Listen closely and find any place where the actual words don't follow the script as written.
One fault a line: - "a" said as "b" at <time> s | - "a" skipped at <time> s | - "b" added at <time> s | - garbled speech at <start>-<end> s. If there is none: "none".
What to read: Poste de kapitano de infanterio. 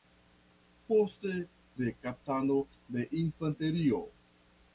none